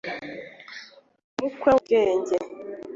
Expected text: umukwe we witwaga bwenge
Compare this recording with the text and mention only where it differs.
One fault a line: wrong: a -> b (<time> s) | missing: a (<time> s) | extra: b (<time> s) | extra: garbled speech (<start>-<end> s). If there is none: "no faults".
missing: we witwaga (1.7 s)